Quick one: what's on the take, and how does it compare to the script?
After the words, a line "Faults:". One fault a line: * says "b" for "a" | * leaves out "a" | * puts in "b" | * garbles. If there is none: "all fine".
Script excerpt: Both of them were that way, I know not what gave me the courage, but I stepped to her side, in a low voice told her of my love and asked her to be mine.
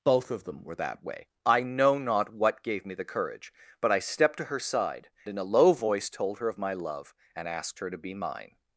Both of them were that way, I know not what gave me the courage, but I stepped to her side, in a low voice told her of my love and asked her to be mine.
Faults:
all fine